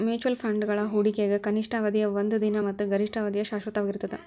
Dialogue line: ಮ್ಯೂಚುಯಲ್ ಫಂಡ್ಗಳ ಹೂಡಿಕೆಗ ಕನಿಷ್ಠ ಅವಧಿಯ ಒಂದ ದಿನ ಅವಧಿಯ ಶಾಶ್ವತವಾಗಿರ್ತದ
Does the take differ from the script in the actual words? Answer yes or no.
yes